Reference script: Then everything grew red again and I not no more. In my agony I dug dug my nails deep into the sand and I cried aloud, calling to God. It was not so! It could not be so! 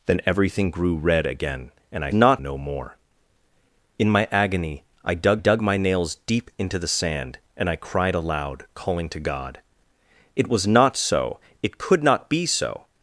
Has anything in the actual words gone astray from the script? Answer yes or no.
no